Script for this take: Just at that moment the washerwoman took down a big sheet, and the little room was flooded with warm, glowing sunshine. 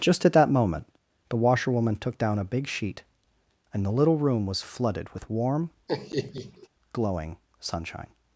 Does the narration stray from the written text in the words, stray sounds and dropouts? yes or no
yes